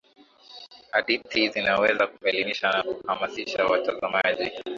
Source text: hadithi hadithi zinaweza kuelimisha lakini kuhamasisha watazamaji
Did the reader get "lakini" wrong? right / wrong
wrong